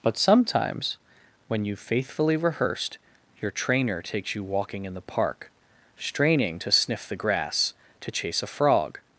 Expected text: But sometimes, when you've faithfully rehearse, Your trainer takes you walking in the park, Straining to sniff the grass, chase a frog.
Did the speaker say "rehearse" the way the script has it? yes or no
no